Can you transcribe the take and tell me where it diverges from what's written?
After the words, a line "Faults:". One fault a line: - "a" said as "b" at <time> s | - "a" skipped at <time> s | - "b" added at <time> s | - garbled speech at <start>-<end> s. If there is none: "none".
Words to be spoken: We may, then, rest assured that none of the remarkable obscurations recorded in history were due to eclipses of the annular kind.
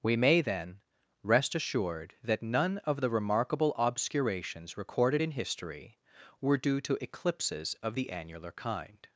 We may, then, rest assured that none of the remarkable obscurations recorded in history were due to eclipses of the annular kind.
Faults:
none